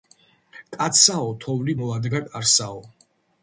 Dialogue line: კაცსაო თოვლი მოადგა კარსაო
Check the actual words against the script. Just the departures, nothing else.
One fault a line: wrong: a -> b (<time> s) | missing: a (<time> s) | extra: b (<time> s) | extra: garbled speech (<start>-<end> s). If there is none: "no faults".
no faults